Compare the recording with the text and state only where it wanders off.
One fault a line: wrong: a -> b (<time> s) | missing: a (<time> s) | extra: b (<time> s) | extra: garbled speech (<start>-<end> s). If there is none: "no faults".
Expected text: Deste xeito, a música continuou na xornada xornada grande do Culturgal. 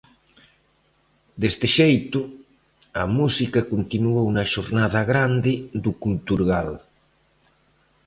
missing: xornada (5.0 s)